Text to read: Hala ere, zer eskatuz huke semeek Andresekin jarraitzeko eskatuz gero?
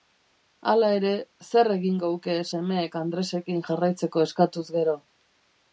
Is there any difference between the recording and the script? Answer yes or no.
yes